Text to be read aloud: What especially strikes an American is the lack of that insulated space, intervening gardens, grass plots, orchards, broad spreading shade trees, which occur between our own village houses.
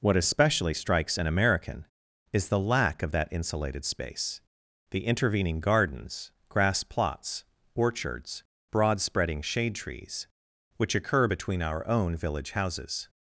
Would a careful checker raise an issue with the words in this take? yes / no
yes